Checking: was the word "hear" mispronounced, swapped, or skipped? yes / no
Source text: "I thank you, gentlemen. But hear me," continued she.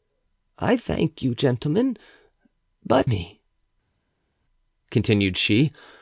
yes